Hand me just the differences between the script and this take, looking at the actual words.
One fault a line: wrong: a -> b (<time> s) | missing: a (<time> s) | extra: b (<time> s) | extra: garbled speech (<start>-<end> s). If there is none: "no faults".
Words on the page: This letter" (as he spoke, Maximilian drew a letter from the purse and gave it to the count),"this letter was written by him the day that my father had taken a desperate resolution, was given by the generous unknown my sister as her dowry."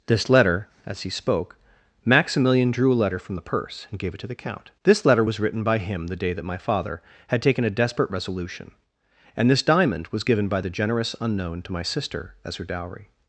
extra: and this diamond (9.3 s)
extra: to (11.6 s)